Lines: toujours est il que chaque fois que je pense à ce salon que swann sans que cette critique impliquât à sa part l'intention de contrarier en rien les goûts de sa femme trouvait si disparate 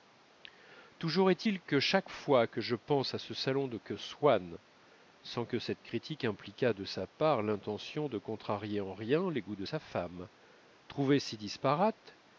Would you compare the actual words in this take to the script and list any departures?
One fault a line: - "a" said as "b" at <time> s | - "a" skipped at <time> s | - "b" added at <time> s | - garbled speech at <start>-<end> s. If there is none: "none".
- "à" said as "de" at 6.7 s